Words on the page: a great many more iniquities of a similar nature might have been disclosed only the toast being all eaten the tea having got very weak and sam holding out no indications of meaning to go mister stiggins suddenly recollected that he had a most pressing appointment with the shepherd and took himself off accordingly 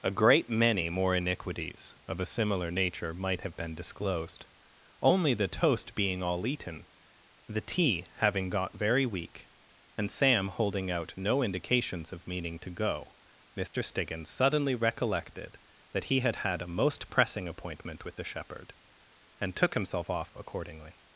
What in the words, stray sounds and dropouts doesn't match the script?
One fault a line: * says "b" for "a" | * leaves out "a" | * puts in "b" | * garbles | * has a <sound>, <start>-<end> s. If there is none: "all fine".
* has a dropout, 13.7-13.7 s
* puts in "had"